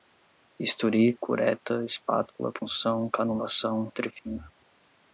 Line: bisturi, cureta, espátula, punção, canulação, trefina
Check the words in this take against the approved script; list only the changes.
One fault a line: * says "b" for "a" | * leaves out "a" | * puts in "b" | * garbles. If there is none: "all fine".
all fine